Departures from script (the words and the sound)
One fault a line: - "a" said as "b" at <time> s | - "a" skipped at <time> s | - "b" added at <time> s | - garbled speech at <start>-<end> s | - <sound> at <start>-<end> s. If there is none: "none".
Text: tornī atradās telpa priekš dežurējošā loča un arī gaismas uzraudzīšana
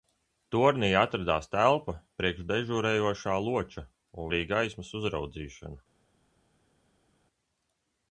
none